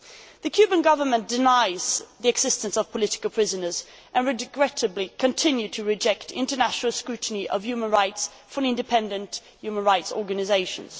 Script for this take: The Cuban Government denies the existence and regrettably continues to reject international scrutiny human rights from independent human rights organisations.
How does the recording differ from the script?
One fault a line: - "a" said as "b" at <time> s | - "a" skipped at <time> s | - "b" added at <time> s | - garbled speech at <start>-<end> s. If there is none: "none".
- "of political prisoners" added at 2.8 s
- "of" added at 7.5 s